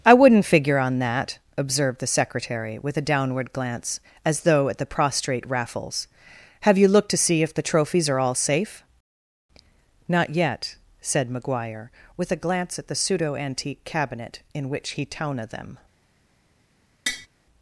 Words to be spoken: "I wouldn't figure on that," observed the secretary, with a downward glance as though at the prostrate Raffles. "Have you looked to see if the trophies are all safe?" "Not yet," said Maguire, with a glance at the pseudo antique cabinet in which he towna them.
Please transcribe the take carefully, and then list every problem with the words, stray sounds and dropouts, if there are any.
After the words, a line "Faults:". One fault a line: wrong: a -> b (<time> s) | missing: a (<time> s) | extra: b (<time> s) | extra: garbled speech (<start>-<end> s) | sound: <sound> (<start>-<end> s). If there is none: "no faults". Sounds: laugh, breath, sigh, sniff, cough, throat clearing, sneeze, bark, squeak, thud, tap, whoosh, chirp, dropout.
"I wouldn't figure on that," observed the secretary, with a downward glance as though at the prostrate Raffles. "Have you looked to see if the trophies are all safe?" "Not yet," said Maguire, with a glance at the pseudo antique cabinet in which he towna them.
Faults:
sound: tap (17.1-17.3 s)